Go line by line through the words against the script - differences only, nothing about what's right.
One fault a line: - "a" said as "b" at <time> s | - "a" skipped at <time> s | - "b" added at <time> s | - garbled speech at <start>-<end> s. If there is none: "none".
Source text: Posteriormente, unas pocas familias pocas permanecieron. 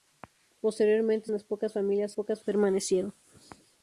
none